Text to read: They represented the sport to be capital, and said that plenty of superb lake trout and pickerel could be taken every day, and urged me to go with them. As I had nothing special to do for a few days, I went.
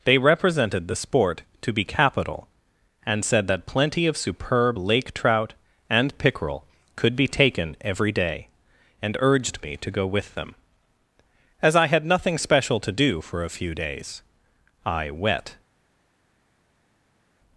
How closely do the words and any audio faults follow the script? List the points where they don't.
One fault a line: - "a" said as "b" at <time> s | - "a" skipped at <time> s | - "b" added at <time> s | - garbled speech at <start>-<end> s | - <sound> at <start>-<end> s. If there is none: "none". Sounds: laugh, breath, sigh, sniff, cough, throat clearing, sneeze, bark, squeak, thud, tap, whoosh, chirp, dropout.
- "went" said as "wet" at 15.1 s